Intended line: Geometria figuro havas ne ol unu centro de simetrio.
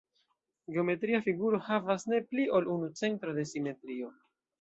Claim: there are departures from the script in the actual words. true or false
true